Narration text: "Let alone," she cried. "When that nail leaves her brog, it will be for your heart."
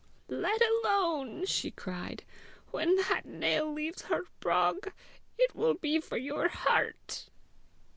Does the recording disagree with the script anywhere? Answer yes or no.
no